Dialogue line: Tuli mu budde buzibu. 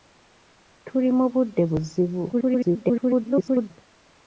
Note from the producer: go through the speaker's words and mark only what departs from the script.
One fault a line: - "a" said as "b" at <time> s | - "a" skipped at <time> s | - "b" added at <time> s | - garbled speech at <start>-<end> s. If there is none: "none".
- garbled speech at 2.3-3.7 s